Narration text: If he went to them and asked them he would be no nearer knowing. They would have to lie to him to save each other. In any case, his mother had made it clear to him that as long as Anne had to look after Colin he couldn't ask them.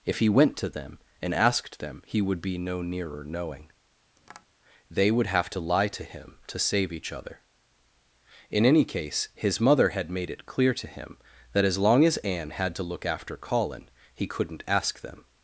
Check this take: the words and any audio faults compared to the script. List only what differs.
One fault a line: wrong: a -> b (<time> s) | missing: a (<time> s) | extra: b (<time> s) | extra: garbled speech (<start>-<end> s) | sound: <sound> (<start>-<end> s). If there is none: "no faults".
sound: tap (4.2-4.5 s)